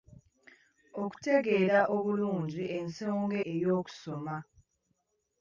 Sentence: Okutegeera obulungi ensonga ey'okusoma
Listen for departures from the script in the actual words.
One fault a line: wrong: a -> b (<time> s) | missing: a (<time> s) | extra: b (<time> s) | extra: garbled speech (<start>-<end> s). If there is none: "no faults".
no faults